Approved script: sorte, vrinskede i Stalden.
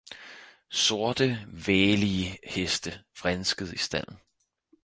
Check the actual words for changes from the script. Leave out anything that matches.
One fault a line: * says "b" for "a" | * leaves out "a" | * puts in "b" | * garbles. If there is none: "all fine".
* puts in "vælige Heste"